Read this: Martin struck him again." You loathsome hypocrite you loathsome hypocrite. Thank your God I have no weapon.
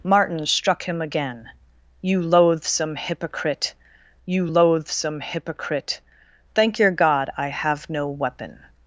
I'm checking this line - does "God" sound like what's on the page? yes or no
yes